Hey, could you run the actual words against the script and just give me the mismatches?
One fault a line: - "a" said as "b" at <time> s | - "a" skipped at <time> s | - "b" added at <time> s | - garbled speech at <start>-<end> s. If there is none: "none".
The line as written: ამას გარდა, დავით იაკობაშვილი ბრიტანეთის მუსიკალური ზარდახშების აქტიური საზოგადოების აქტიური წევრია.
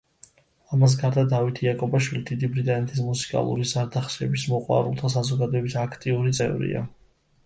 - "დიდი" added at 2.3 s
- "აქტიური" said as "მოყვარულთა" at 4.5 s